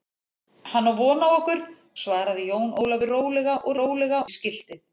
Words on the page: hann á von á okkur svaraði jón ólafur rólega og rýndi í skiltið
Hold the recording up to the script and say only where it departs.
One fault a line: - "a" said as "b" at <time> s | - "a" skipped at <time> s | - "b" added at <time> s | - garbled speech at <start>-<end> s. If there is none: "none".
- "rýndi" said as "rólega" at 3.8 s